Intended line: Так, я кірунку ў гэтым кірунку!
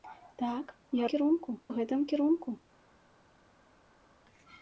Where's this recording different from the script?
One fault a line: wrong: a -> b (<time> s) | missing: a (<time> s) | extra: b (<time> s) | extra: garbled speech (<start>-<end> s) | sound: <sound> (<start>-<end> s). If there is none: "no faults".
no faults